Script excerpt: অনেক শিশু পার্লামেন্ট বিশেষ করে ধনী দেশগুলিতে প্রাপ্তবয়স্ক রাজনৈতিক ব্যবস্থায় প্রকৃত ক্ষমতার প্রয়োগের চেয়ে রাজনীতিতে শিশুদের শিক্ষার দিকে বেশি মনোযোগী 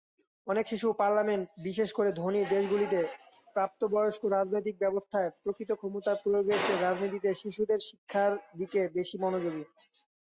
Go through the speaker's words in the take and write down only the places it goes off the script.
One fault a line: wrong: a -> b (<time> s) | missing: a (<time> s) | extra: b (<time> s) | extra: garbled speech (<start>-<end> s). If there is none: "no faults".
no faults